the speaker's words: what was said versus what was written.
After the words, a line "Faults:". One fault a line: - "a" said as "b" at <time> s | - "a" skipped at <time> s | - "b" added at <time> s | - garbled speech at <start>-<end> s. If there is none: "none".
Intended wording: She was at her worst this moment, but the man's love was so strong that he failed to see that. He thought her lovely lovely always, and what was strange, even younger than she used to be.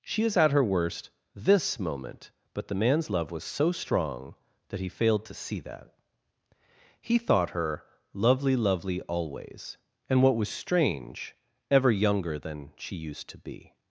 She is at her worst this moment, but the man's love was so strong that he failed to see that. He thought her lovely lovely always, and what was strange, ever younger than she used to be.
Faults:
- "was" said as "is" at 0.2 s
- "even" said as "ever" at 11.7 s